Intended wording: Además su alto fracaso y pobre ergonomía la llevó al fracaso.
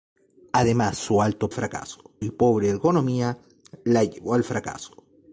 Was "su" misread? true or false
false